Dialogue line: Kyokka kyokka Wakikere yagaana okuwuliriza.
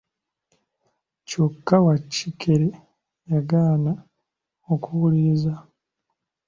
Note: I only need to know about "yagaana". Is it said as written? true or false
true